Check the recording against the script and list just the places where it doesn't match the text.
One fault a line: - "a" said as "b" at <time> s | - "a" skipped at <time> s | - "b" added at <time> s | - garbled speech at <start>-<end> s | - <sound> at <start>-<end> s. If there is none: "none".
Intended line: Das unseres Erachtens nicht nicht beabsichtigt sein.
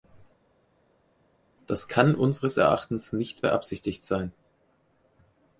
- "kann" added at 1.9 s
- "nicht" skipped at 3.5 s